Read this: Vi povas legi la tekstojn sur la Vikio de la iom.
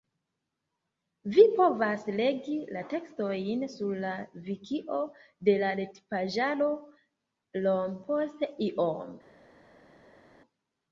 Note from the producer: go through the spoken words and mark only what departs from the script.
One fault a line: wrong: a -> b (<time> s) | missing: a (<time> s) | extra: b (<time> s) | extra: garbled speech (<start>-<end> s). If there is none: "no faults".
extra: retpaĝaro Iom post (5.8 s)